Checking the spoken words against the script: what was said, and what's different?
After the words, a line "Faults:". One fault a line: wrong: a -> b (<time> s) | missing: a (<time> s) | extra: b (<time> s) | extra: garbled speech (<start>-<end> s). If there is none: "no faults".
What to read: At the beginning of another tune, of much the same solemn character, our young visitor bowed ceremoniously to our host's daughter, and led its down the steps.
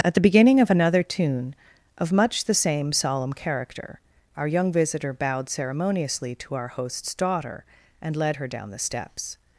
At the beginning of another tune, of much the same solemn character, our young visitor bowed ceremoniously to our host's daughter, and led her down the steps.
Faults:
wrong: its -> her (8.4 s)